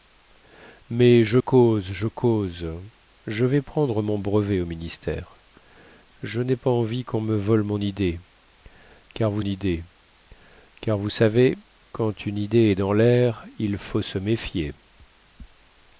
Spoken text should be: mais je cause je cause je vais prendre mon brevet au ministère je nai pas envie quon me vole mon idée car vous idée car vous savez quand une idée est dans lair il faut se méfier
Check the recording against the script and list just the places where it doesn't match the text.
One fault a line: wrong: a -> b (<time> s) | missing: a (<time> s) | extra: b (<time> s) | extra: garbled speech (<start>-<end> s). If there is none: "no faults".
no faults